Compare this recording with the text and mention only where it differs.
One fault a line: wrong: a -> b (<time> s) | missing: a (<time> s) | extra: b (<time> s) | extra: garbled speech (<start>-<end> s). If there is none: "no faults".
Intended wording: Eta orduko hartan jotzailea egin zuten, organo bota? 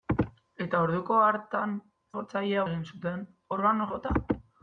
no faults